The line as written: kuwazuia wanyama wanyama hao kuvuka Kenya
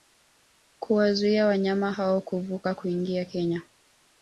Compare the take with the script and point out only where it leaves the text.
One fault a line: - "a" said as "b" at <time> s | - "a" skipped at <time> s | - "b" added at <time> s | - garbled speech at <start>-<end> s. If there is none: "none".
- "wanyama" skipped at 1.9 s
- "kuingia" added at 2.7 s